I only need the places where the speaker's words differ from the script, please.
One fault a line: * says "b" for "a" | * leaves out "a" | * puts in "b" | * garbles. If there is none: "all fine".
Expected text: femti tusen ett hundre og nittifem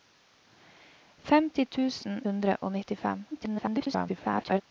* leaves out "ett"
* garbles